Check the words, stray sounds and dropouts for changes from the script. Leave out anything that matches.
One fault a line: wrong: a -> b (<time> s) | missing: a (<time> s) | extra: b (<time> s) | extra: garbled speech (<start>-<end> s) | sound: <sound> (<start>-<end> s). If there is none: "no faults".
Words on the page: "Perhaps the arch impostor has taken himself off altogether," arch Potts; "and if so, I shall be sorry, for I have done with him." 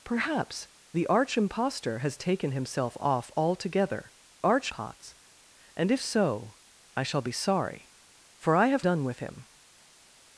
no faults